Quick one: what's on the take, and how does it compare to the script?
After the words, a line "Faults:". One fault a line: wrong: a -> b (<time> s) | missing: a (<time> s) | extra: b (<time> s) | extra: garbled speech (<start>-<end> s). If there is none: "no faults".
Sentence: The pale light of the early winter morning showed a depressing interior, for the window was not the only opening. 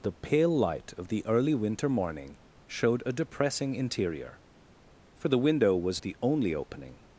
The pale light of the early winter morning showed a depressing interior, for the window was the only opening.
Faults:
missing: not (6.0 s)